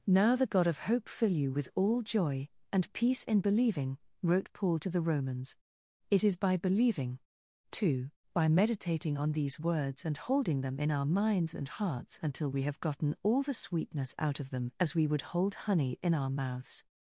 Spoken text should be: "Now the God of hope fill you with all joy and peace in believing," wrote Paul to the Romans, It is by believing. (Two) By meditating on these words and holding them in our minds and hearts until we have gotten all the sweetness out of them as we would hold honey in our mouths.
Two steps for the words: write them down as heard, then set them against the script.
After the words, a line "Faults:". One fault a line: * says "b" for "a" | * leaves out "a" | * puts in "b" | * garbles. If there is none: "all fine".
"Now the God of hope fill you with all joy and peace in believing," wrote Paul to the Romans, It is by believing. (Two) By meditating on these words and holding them in our minds and hearts until we have gotten all the sweetness out of them as we would hold honey in our mouths.
Faults:
all fine